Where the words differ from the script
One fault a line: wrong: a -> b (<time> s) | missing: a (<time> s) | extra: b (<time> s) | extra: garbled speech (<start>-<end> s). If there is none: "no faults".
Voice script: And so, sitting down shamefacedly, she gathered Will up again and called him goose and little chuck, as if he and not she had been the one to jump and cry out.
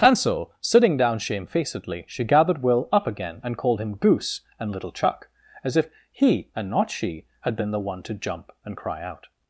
no faults